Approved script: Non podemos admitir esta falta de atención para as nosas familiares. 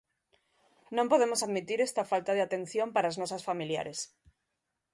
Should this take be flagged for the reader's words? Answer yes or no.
no